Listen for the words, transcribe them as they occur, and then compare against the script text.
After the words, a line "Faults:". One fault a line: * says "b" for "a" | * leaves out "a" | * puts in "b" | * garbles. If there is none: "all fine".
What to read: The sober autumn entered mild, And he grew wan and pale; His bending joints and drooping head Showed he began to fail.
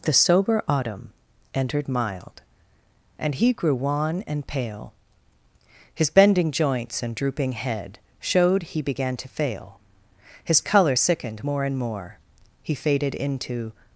The sober autumn entered mild, And he grew wan and pale; His bending joints and drooping head Showed he began to fail. His colour sickened more and more, He faded into
Faults:
* puts in "His colour sickened more and more He faded into"